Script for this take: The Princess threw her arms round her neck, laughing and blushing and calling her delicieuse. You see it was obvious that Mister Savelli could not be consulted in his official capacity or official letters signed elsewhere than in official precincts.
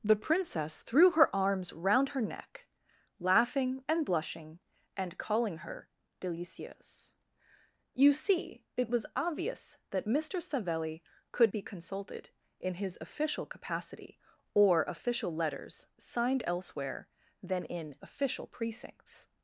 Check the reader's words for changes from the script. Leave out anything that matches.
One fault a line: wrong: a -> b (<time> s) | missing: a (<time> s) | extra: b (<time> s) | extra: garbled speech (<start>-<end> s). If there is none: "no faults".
missing: not (11.5 s)